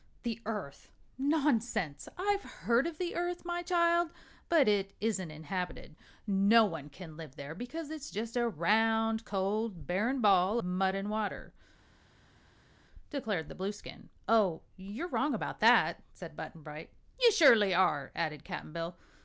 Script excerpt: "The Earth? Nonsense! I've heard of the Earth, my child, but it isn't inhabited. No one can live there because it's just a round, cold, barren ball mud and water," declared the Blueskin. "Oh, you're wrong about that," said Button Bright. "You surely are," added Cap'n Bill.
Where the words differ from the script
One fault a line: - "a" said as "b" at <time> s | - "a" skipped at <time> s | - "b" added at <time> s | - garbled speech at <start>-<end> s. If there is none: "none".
none